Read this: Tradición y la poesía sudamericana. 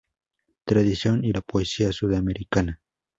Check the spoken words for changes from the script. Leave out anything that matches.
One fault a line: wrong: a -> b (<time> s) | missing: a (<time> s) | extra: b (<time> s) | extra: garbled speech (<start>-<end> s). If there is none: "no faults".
no faults